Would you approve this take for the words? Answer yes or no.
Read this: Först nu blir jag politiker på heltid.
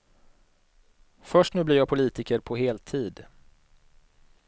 yes